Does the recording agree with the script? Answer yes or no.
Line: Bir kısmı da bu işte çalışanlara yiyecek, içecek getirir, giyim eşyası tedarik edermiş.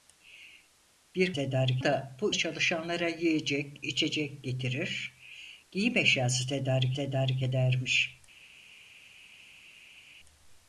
no